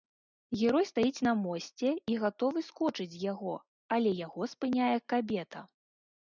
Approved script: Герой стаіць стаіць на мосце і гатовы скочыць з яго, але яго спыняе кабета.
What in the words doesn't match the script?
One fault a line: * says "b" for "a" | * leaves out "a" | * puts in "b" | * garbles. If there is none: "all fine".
* leaves out "стаіць"